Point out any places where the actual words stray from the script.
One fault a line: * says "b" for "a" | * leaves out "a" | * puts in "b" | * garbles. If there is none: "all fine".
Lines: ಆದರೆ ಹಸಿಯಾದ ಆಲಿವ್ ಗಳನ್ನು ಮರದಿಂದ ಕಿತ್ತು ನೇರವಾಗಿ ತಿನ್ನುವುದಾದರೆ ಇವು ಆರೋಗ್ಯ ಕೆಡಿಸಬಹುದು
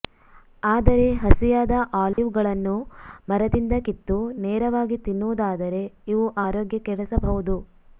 all fine